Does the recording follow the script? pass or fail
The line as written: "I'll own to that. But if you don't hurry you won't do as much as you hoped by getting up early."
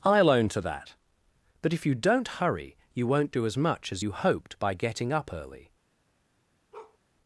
pass